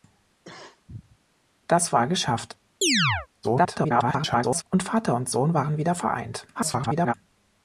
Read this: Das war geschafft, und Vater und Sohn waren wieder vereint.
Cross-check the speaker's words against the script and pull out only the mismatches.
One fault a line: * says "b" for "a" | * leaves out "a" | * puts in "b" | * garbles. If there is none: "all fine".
* garbles
* garbles